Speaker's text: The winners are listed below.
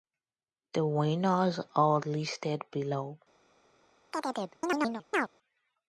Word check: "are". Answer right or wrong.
right